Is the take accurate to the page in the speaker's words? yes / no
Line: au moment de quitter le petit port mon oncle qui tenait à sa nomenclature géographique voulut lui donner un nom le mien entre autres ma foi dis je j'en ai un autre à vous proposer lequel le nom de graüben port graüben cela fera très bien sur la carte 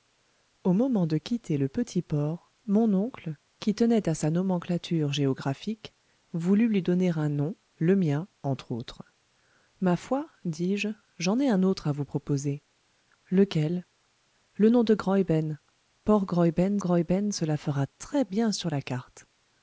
no